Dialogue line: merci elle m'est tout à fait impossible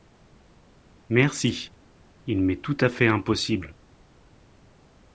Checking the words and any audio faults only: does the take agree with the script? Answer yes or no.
no